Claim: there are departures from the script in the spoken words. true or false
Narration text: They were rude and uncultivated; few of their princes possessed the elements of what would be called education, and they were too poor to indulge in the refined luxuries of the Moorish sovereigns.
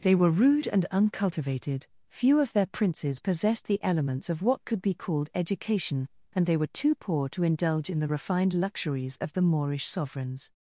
true